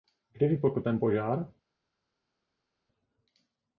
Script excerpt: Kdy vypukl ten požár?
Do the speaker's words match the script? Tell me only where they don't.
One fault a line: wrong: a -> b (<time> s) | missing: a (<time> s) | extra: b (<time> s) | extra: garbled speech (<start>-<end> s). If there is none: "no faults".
no faults